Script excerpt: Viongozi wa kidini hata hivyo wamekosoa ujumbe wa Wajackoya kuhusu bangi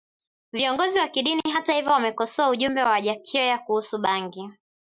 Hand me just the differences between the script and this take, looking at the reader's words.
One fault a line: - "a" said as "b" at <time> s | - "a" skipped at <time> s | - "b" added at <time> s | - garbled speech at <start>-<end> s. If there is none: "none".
none